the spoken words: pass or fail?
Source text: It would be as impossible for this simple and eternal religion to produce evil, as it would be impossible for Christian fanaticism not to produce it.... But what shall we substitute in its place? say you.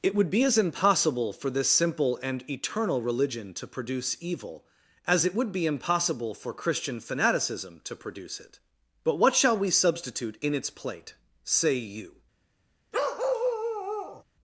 fail